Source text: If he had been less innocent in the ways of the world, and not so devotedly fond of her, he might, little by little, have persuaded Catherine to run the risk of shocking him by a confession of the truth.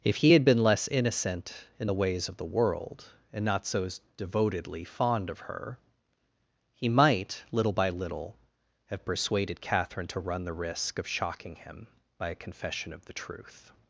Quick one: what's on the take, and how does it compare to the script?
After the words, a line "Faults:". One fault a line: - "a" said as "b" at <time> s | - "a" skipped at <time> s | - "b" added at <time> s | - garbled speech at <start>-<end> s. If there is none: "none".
If he had been less innocent in the ways of the world, and not so devotedly fond of her, he might, little by little, have persuaded Catherine to run the risk of shocking him by a confession of the truth.
Faults:
none